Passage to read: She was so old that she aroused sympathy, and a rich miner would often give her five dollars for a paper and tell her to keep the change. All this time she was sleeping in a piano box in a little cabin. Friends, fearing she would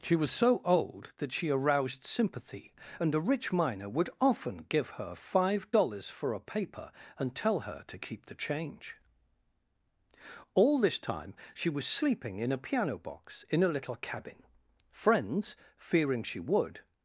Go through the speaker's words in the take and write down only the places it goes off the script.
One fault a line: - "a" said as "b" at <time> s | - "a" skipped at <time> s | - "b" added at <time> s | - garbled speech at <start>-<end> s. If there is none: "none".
none